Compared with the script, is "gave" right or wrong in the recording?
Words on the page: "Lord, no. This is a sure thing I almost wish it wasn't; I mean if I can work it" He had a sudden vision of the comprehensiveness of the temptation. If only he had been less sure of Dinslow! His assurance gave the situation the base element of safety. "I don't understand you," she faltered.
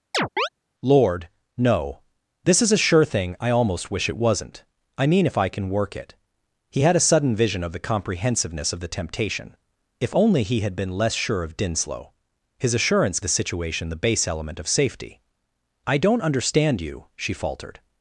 wrong